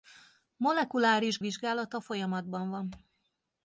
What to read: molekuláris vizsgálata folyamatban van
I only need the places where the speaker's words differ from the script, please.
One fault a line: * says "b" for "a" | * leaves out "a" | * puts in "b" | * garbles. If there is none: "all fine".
all fine